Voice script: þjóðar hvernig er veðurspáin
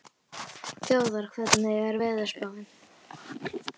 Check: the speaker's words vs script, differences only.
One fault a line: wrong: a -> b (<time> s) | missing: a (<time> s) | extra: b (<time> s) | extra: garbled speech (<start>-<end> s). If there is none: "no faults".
no faults